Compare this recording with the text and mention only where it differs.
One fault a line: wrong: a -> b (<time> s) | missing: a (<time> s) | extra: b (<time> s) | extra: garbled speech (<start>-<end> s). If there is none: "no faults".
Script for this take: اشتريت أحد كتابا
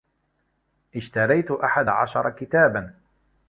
extra: عشر (1.9 s)